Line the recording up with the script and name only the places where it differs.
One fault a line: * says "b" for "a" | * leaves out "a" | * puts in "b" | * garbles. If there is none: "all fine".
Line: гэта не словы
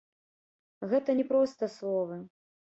* puts in "проста"